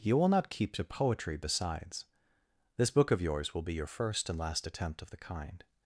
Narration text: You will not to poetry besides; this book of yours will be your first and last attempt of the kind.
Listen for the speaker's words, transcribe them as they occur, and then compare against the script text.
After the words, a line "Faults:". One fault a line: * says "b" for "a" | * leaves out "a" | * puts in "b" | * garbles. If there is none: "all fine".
You will not keep to poetry besides; this book of yours will be your first and last attempt of the kind.
Faults:
* puts in "keep"